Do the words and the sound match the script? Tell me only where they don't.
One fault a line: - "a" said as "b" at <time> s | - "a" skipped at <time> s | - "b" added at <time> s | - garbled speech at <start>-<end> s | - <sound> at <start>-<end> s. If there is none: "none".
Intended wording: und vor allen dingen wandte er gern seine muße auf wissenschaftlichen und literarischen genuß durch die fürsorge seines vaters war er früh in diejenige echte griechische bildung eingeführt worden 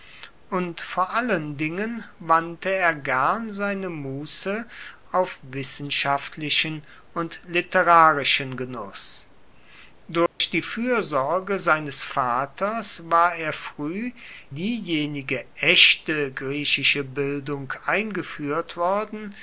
- dropout at 10.3-10.4 s
- "in" skipped at 14.1 s